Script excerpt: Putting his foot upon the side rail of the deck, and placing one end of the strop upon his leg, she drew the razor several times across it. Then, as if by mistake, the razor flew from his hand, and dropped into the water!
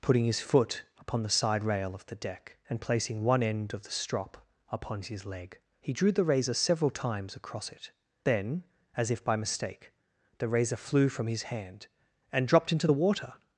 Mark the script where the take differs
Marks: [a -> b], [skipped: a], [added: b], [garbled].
Putting his foot upon the side rail of the deck, and placing one end of the strop upon his leg, [she -> he] drew the razor several times across it. Then, as if by mistake, the razor flew from his hand, and dropped into the water!